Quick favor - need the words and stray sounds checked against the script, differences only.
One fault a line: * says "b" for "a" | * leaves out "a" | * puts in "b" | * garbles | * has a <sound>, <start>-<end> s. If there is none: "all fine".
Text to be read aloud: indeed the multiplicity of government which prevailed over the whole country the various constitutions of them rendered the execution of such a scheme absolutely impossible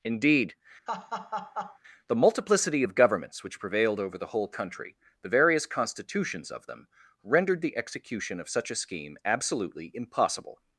* has a laugh, 0.9-1.8 s
* says "governments" for "government"